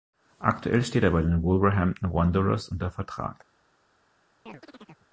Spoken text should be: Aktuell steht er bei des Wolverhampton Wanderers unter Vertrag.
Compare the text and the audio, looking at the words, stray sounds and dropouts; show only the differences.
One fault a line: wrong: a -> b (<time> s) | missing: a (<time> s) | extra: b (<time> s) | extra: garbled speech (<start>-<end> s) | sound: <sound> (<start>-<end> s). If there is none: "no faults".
wrong: des -> den (1.2 s)
sound: chirp (4.5-5.1 s)